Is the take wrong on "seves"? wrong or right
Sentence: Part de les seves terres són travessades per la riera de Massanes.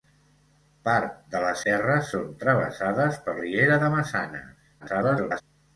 wrong